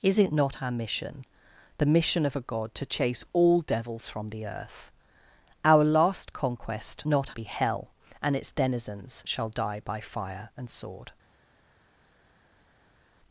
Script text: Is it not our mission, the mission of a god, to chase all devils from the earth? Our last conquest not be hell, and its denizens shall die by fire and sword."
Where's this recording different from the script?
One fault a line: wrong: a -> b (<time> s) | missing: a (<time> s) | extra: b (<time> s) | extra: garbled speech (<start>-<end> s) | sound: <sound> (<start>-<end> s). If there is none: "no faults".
no faults